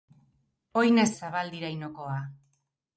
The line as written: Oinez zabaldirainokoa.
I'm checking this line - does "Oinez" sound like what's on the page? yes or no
yes